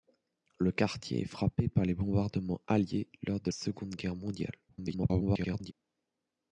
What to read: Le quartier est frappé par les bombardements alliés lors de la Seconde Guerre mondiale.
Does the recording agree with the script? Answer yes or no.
no